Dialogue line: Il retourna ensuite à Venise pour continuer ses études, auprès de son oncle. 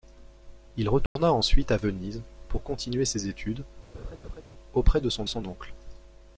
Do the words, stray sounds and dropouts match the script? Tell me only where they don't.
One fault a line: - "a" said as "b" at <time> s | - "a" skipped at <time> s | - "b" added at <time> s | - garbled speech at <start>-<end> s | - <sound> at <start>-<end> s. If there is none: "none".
- dropout at 1.1-1.2 s
- laugh at 3.9-4.4 s
- "son" added at 5.2 s